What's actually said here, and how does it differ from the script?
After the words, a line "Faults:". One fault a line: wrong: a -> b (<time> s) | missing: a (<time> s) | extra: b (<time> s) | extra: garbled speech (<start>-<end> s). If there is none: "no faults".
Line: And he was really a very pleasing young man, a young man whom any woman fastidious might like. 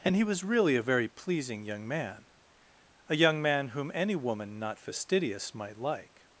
And he was really a very pleasing young man, a young man whom any woman not fastidious might like.
Faults:
extra: not (4.6 s)